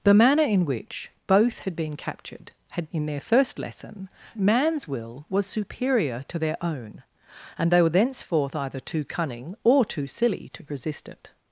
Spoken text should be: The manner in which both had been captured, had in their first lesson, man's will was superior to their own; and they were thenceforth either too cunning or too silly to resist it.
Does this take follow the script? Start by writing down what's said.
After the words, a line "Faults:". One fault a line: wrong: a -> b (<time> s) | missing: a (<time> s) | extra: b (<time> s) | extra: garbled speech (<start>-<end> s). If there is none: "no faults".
The manner in which both had been captured, had in their first lesson, man's will was superior to their own; and they were thenceforth either too cunning or too silly to resist it.
Faults:
no faults